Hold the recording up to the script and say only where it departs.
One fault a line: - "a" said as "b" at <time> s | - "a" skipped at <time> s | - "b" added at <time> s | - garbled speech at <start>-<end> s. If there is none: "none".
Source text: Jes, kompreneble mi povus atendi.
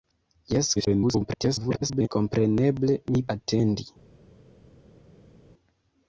- garbled speech at 0.7-2.1 s
- "povus" skipped at 3.2 s